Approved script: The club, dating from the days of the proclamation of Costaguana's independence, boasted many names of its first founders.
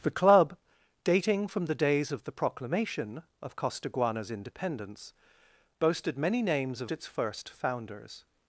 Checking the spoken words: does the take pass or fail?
pass